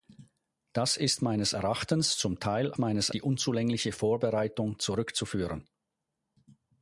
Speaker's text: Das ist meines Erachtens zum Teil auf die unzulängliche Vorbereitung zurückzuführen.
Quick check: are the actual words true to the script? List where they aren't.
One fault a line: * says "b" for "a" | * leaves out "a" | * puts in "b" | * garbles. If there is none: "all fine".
* says "meines" for "auf"